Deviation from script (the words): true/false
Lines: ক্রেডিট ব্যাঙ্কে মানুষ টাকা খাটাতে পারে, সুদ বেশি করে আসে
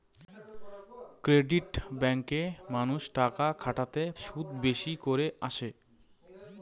true